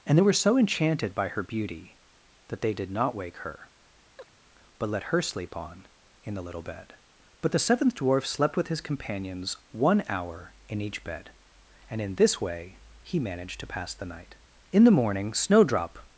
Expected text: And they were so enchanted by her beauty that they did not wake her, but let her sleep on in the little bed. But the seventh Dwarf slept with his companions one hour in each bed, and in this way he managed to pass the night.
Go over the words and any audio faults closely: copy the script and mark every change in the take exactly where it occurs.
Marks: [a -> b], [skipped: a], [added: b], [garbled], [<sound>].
And they were so enchanted by her beauty that they did not wake her, [chirp] but let her sleep on in the little bed. But the seventh Dwarf slept with his companions one hour in each bed, and in this way he managed to pass the night. [added: In the morning Snowdrop]